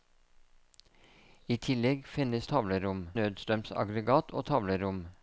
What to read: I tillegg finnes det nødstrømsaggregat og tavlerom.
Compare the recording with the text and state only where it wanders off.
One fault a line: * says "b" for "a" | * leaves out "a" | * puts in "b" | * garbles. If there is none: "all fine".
* says "tavlerom" for "det"